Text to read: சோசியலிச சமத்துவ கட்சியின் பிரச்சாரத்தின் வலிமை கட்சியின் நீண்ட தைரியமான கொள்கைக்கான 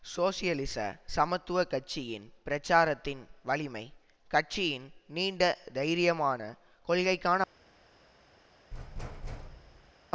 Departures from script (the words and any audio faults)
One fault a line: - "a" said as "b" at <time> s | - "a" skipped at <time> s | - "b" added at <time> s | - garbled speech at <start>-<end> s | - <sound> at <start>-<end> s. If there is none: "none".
- thud at 8.7-9.9 s